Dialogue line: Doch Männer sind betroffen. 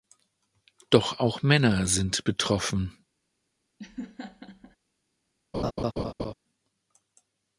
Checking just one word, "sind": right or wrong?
right